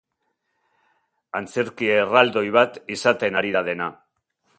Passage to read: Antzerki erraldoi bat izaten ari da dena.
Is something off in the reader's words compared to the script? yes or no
no